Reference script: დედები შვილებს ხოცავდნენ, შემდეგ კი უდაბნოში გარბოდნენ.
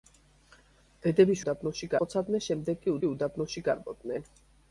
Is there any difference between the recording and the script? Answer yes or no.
yes